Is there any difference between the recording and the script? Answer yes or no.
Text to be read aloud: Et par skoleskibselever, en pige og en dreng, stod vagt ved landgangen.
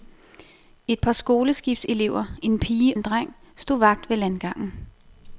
yes